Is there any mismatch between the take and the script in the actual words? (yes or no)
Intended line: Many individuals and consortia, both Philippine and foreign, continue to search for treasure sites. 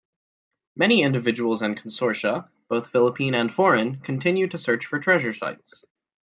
no